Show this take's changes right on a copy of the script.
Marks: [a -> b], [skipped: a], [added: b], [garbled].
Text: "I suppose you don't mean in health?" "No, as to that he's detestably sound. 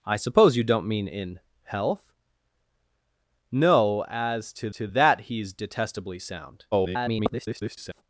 "I suppose you don't mean in health?" "No, as to [added: to] that he's detestably sound. [garbled]